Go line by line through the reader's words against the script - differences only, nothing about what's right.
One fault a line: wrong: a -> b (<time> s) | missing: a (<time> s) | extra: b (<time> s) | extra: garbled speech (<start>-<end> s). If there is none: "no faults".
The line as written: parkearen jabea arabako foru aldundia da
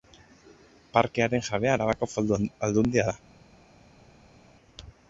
no faults